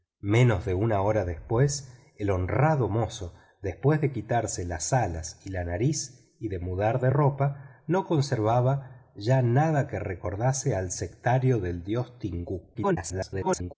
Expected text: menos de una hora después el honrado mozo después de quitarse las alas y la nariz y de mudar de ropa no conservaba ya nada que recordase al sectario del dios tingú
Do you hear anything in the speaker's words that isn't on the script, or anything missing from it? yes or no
yes